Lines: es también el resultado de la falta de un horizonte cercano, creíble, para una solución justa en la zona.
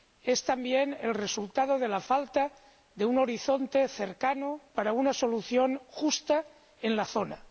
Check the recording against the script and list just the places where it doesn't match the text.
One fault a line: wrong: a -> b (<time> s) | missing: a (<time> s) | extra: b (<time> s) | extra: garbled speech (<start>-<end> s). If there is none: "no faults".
missing: creíble (4.6 s)